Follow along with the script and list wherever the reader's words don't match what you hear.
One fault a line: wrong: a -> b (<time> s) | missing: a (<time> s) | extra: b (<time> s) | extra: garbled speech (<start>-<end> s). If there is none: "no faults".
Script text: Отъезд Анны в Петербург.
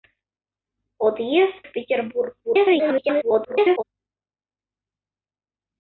missing: Анны (1.6 s)
extra: garbled speech (2.4-3.8 s)